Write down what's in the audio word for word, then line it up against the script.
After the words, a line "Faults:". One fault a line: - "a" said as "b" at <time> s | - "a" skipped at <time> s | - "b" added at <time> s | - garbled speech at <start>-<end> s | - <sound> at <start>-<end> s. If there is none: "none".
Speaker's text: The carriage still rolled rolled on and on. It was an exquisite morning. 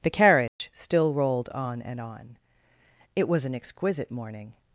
The carriage still rolled on and on. It was an exquisite morning.
Faults:
- dropout at 0.5-0.6 s
- "rolled" skipped at 1.5 s